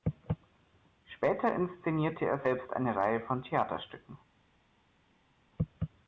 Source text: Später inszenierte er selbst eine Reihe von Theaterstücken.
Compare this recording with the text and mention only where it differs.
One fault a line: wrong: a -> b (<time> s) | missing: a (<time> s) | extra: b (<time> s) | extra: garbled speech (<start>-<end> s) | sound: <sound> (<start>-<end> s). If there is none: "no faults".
no faults